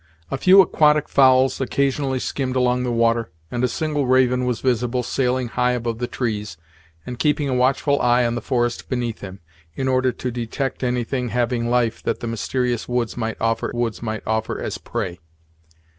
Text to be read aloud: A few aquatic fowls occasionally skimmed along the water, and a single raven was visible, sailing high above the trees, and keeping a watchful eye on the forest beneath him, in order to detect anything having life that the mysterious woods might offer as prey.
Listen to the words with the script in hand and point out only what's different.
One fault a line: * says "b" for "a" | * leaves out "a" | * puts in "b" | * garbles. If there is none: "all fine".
* puts in "woods might offer"